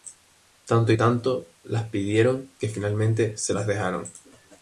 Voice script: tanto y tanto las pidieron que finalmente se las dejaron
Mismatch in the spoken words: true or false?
false